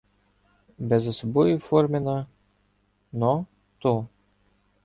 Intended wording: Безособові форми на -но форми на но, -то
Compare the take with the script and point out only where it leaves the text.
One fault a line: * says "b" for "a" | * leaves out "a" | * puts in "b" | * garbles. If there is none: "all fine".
* leaves out "форми на но"